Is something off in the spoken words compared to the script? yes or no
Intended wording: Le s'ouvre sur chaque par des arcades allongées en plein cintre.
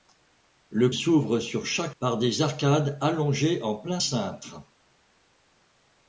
no